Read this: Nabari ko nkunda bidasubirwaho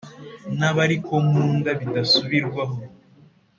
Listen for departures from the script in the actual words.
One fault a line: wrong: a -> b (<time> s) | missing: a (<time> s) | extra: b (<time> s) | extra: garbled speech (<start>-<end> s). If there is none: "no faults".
no faults